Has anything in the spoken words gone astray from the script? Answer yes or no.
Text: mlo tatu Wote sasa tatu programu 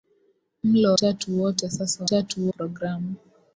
no